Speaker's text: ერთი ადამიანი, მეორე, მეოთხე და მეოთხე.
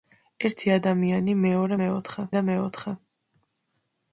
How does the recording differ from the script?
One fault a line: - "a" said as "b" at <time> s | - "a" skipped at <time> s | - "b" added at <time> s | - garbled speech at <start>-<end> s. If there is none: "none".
none